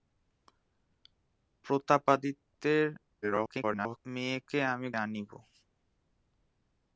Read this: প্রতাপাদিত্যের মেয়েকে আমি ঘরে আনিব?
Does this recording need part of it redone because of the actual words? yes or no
yes